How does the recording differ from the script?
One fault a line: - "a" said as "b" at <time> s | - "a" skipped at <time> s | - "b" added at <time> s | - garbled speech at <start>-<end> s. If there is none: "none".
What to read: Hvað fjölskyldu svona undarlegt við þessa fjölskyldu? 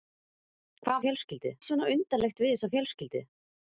none